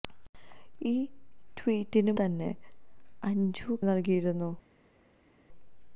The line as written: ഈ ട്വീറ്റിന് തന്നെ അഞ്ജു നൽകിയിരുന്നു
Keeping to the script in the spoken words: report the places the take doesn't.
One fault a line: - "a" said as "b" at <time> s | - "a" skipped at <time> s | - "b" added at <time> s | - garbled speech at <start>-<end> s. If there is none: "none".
none